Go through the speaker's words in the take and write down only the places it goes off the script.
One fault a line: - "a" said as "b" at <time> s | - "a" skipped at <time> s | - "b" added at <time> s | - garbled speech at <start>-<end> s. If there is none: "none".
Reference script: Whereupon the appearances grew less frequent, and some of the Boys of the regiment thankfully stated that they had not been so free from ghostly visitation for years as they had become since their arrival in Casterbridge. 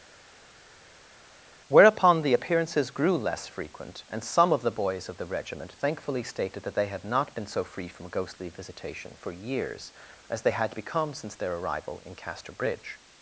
none